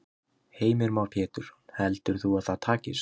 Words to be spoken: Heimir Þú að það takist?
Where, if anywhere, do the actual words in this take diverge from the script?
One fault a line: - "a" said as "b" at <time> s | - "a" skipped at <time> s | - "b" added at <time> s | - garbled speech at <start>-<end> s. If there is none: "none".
- "Már Pétursson Heldur" added at 0.9 s